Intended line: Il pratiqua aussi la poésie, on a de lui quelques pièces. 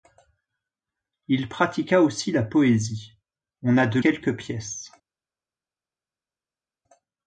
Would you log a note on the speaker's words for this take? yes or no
yes